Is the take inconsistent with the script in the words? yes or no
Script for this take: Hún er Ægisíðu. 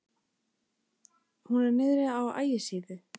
yes